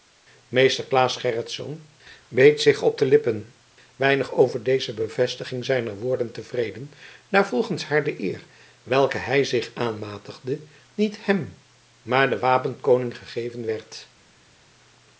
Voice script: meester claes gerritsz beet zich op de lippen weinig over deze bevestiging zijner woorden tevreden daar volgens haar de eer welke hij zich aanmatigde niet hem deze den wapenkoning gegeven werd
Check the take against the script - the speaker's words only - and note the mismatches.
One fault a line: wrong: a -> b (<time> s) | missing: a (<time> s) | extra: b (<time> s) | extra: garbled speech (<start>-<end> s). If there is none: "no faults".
wrong: deze -> maar (12.0 s)